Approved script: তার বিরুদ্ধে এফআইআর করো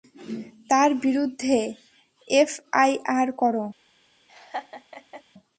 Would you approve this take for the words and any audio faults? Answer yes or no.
no